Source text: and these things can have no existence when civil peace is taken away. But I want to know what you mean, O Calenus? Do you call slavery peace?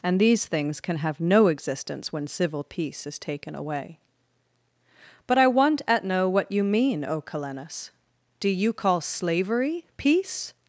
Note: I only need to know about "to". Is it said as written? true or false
false